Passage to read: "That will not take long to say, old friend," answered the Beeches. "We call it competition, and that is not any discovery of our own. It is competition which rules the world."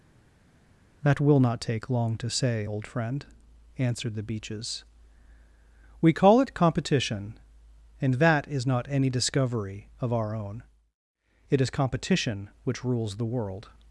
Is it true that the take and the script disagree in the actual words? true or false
false